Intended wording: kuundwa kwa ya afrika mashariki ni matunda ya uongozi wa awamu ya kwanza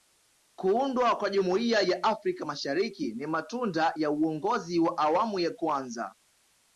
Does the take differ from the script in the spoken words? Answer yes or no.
yes